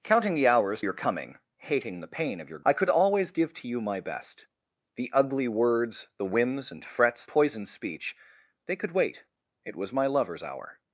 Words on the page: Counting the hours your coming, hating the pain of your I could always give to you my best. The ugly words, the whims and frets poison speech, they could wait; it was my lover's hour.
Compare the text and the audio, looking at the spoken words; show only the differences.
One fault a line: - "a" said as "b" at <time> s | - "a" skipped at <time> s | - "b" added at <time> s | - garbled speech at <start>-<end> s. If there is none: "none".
none